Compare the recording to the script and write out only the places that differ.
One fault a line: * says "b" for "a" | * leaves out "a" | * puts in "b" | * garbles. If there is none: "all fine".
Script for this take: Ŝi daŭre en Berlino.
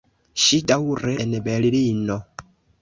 all fine